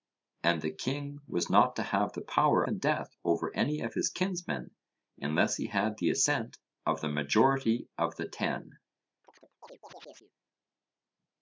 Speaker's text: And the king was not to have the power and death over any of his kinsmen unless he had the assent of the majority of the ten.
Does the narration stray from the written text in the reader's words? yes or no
no